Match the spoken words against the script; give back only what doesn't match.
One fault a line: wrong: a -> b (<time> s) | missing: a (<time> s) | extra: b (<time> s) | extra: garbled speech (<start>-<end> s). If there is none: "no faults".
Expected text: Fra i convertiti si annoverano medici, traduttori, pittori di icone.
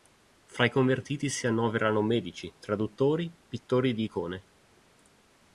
no faults